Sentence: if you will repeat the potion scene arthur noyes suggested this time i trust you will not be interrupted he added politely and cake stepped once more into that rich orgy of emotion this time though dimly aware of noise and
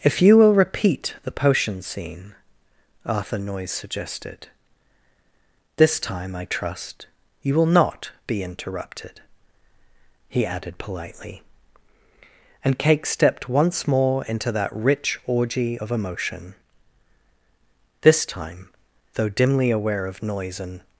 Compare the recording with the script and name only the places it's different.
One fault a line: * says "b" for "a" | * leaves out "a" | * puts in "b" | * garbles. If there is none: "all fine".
all fine